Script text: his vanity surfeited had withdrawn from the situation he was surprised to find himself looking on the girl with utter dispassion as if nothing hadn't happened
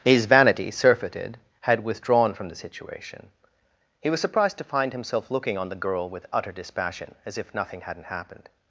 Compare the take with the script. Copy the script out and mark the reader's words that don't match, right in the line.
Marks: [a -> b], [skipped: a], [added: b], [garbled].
his vanity surfeited had withdrawn from the situation he was surprised to find himself looking on the girl with utter dispassion as if nothing hadn't happened